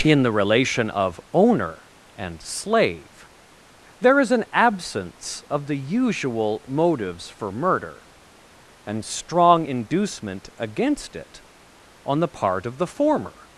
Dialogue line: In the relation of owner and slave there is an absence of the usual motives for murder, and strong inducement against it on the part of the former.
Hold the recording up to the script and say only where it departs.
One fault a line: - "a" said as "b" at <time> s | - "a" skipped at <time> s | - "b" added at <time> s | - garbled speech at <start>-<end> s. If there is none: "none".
none